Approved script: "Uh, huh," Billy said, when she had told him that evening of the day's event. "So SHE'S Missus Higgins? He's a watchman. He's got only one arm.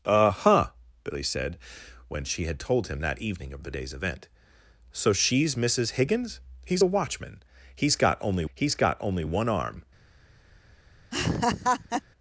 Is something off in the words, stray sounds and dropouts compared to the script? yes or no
yes